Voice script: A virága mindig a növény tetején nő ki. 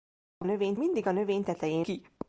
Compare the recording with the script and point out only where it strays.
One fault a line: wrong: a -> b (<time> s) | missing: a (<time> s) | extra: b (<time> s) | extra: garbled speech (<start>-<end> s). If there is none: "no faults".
wrong: virága -> növény (0.4 s)
missing: nő (1.9 s)